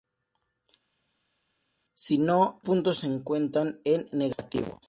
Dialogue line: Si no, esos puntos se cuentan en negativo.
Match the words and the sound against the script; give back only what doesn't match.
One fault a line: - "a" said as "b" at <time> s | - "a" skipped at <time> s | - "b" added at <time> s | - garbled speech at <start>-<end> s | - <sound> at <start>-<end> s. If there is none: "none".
- "esos" skipped at 2.6 s